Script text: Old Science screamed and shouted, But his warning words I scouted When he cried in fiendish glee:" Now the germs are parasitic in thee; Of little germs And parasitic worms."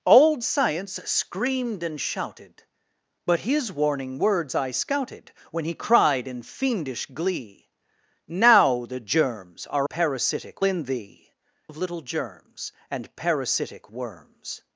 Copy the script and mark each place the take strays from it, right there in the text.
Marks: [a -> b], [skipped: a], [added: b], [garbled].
Old Science screamed and shouted, But his warning words I scouted When he cried in fiendish glee:" Now the germs are parasitic in thee; Of little germs And parasitic worms."